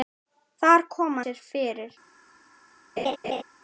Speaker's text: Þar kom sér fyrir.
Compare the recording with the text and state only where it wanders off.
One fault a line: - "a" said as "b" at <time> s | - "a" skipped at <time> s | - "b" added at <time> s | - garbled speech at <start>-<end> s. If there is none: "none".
none